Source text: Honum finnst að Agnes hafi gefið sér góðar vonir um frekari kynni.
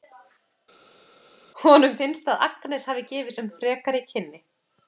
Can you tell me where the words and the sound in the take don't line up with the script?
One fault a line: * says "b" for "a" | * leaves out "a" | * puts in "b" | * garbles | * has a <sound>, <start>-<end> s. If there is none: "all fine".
* leaves out "sér góðar vonir"